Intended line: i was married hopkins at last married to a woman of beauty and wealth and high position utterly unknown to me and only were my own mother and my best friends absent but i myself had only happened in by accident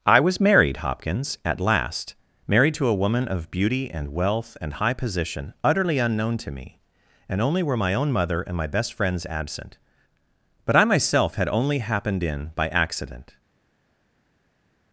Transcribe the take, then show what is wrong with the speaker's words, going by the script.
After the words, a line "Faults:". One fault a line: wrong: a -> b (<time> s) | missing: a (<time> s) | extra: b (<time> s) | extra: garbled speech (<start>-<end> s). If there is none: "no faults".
i was married hopkins at last married to a woman of beauty and wealth and high position utterly unknown to me and only were my own mother and my best friends absent but i myself had only happened in by accident
Faults:
no faults